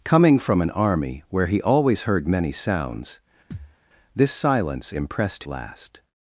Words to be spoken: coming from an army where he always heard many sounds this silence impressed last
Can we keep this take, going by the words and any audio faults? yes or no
no